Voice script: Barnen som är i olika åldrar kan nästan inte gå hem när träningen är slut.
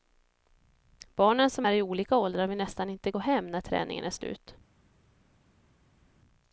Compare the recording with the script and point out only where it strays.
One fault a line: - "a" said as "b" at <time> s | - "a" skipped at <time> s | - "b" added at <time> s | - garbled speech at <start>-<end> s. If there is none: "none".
- "kan" said as "vill" at 2.5 s